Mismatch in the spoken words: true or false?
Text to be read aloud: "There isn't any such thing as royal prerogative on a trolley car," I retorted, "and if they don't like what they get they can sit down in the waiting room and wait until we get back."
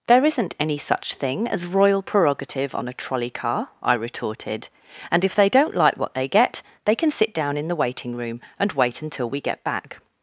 false